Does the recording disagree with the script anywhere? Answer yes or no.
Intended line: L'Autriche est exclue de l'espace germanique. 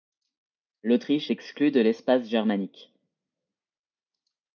yes